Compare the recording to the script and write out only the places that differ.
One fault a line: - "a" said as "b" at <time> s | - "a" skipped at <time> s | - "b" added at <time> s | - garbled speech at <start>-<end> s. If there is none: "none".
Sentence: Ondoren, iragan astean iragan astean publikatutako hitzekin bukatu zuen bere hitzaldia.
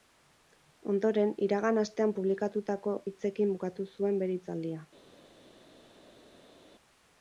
- "iragan astean" skipped at 2.1 s